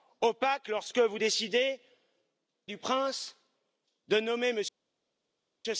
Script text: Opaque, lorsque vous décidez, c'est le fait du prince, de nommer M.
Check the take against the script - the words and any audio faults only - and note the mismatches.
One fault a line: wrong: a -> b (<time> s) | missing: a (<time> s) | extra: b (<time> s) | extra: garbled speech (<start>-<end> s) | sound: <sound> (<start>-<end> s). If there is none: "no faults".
missing: c'est le fait (1.8 s)